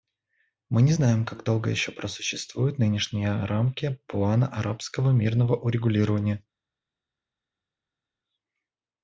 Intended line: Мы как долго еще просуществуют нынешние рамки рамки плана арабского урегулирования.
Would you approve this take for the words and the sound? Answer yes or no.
no